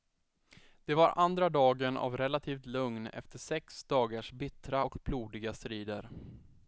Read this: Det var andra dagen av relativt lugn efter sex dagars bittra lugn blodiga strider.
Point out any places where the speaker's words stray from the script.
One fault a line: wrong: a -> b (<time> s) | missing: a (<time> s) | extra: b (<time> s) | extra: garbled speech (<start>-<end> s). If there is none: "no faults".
wrong: lugn -> och (4.8 s)